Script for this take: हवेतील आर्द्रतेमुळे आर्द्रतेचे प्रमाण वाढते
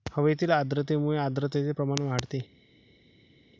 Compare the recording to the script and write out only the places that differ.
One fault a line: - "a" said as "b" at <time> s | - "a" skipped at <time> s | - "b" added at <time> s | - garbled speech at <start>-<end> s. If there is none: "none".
none